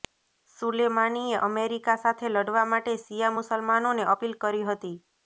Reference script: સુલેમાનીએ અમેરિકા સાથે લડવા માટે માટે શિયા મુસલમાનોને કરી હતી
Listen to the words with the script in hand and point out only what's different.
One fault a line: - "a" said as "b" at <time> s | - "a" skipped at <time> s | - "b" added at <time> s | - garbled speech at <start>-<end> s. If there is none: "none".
- "માટે" skipped at 3.0 s
- "અપીલ" added at 4.1 s